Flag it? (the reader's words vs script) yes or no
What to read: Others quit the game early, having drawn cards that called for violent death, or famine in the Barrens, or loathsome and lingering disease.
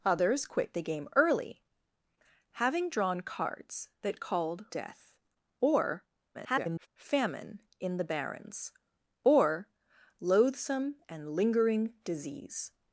yes